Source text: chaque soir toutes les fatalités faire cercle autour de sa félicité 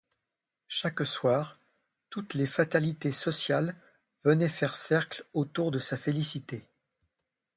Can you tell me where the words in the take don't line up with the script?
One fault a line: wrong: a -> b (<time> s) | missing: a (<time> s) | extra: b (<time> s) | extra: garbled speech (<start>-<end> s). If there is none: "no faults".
extra: sociales venaient (3.1 s)